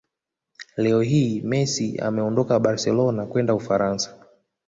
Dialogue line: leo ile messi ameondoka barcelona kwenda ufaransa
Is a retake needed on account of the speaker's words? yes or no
yes